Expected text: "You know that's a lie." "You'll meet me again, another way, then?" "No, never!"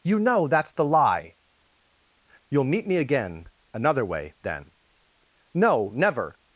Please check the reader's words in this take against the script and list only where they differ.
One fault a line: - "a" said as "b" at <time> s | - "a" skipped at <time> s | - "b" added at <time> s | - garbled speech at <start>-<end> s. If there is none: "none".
- "a" said as "the" at 0.7 s